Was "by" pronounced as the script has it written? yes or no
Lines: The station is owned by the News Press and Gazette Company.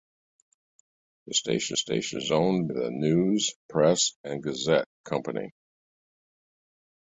no